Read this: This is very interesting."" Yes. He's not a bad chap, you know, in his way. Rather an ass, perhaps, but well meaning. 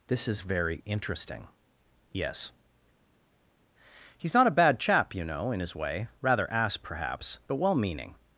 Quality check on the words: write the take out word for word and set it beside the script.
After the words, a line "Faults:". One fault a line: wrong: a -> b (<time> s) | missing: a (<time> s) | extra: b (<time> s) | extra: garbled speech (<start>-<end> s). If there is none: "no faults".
This is very interesting."" Yes. He's not a bad chap, you know, in his way. Rather ass, perhaps, but well meaning.
Faults:
missing: an (6.5 s)